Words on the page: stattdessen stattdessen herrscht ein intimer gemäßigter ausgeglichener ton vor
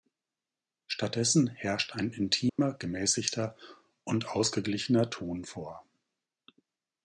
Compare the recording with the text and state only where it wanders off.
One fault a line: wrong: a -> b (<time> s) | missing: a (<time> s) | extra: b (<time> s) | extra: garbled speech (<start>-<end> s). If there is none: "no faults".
missing: stattdessen (1.4 s)
extra: und (4.0 s)